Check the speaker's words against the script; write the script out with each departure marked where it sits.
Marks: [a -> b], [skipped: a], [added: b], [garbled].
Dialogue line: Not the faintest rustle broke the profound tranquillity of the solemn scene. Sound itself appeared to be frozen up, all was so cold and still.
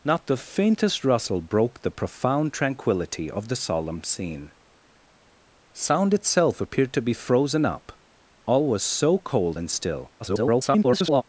Not the faintest rustle broke the profound tranquillity of the solemn scene. Sound itself appeared to be frozen up, all was so cold and still. [garbled]